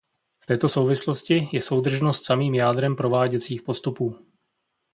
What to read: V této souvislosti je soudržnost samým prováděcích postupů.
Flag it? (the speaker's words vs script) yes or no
yes